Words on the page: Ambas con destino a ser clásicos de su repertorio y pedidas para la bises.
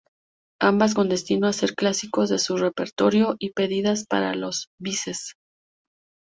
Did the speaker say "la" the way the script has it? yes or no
no